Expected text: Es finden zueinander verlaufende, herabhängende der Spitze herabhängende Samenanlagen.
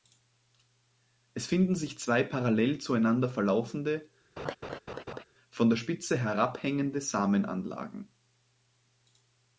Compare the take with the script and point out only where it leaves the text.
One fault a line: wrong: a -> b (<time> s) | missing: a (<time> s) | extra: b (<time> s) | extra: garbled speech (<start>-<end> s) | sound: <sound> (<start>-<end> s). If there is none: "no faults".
extra: sich zwei parallel (1.8 s)
sound: laugh (4.4-5.2 s)
wrong: herabhängende -> von (5.5 s)